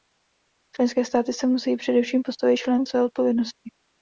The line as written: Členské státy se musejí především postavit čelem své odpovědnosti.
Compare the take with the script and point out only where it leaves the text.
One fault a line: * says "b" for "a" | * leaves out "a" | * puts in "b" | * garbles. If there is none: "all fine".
all fine